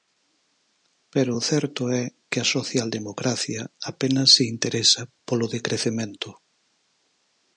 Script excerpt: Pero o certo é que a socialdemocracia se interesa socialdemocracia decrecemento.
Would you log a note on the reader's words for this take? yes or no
yes